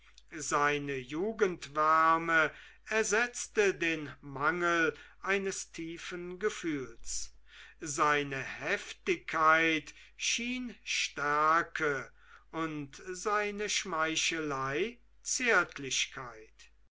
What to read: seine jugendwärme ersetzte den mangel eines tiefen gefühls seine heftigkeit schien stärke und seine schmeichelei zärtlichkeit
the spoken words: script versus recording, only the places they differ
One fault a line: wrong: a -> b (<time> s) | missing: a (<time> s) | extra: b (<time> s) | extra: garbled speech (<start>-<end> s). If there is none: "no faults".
no faults